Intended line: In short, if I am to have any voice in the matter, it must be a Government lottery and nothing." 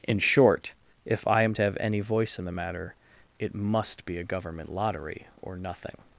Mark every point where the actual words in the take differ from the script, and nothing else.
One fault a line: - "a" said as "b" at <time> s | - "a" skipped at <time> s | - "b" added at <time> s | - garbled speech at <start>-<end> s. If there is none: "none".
- "and" said as "or" at 5.4 s